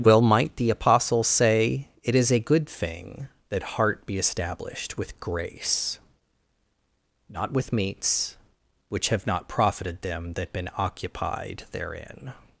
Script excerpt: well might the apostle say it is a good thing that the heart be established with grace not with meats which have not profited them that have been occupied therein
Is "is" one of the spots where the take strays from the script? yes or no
no